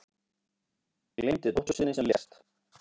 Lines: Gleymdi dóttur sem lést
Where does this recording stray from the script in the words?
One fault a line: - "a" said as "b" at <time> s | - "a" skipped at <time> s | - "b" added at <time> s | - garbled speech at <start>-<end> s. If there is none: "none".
- "sinni" added at 1.8 s